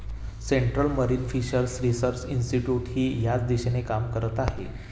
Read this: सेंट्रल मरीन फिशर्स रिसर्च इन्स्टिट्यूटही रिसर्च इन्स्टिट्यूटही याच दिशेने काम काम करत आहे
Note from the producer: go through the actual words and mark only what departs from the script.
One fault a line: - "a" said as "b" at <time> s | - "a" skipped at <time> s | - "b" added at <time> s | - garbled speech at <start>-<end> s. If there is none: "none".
- "रिसर्च इन्स्टिट्यूटही" skipped at 3.0 s
- "काम" skipped at 4.1 s